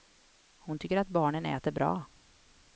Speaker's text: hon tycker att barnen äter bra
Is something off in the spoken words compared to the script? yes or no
no